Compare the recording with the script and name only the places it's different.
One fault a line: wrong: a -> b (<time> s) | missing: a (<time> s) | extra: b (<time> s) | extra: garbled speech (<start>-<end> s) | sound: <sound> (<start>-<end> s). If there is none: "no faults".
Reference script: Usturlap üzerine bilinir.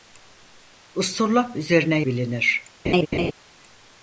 sound: laugh (2.8-3.3 s)